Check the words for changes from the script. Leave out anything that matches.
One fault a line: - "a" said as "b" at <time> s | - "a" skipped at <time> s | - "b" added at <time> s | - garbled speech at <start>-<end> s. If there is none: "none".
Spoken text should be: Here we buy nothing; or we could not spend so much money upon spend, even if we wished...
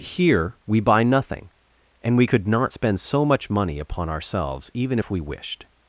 - "or" said as "and" at 2.0 s
- "spend" said as "ourselves" at 4.1 s